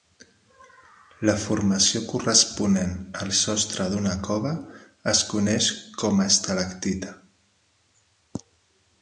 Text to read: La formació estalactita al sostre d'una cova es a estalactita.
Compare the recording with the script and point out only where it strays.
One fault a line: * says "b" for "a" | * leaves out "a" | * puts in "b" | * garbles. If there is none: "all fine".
* says "corresponent" for "estalactita"
* puts in "coneix com"